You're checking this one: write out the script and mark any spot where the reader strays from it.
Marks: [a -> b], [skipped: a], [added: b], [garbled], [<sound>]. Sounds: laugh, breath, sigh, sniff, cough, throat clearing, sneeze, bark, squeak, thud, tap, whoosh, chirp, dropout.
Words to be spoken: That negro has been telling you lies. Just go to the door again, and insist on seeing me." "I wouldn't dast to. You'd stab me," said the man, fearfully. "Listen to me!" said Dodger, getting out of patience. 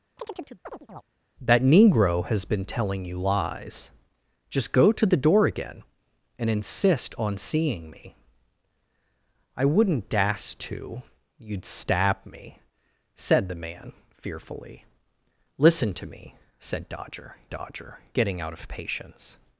[chirp] That negro has been telling you lies. Just go to the door again, and insist on seeing me." "I wouldn't dast to. You'd stab me," said the man, fearfully. "Listen to me!" said Dodger, [added: Dodger] getting out of patience.